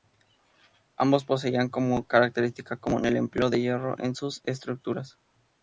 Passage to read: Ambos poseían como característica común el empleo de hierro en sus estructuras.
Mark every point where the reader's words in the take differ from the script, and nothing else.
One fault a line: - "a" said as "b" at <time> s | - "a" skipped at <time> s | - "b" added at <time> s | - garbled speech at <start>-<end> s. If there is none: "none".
none